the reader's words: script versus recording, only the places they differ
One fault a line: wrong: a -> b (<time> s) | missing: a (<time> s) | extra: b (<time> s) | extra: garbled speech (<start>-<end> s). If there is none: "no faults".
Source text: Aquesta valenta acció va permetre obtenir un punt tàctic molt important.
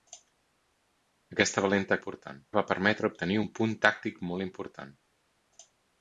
wrong: acció -> important (2.0 s)